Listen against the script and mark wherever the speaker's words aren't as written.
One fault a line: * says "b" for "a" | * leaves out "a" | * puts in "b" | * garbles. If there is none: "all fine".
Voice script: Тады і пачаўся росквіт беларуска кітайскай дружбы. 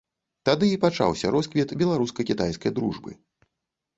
all fine